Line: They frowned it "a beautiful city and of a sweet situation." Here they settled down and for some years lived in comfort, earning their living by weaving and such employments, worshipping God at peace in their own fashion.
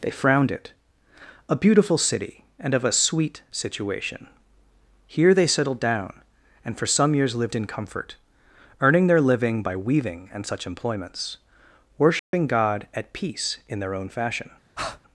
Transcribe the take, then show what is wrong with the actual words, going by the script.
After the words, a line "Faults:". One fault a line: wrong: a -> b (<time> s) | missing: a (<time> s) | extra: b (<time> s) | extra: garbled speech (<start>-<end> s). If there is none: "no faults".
They frowned it "a beautiful city and of a sweet situation." Here they settled down and for some years lived in comfort, earning their living by weaving and such employments, worshipping God at peace in their own fashion.
Faults:
no faults